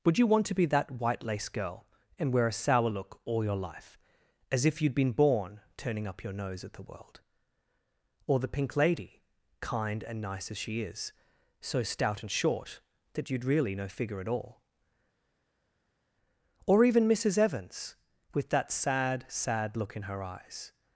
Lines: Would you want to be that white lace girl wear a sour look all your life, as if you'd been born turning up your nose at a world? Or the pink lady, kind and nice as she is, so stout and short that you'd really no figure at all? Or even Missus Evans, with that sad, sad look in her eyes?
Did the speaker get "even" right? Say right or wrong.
right